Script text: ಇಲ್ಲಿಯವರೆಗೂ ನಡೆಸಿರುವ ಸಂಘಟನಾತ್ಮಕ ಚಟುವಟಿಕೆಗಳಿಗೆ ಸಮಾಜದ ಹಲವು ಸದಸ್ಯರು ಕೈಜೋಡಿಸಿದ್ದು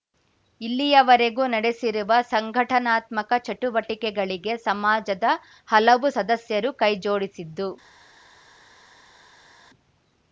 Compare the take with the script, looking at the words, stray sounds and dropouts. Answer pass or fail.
pass